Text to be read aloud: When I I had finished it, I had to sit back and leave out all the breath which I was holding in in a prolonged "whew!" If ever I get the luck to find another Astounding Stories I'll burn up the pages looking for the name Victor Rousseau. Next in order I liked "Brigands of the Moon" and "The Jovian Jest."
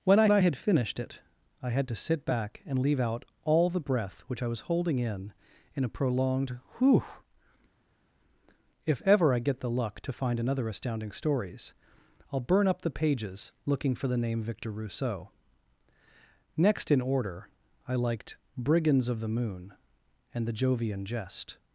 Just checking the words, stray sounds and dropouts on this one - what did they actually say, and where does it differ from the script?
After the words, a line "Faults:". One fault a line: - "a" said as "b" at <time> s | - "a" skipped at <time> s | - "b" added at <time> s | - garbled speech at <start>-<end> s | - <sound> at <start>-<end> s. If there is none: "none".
When I I had finished it, I had to sit back and leave out all the breath which I was holding in in a prolonged "whew!" If ever I get the luck to find another Astounding Stories I'll burn up the pages looking for the name Victor Rousseau. Next in order I liked "Brigands of the Moon" and "The Jovian Jest."
Faults:
none